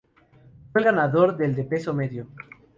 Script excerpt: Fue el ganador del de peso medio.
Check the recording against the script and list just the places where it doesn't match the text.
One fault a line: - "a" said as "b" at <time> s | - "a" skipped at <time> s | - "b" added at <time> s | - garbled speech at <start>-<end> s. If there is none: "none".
none